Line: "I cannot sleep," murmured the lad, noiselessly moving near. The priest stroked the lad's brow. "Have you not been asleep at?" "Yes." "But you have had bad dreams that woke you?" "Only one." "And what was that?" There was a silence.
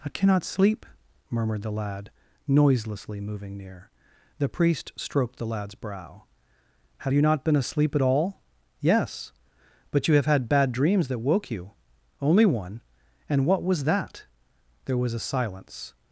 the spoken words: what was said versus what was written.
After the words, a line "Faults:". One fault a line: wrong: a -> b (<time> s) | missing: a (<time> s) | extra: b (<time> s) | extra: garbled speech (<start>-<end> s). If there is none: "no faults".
"I cannot sleep," murmured the lad, noiselessly moving near. The priest stroked the lad's brow. "Have you not been asleep at all?" "Yes." "But you have had bad dreams that woke you?" "Only one." "And what was that?" There was a silence.
Faults:
extra: all (8.0 s)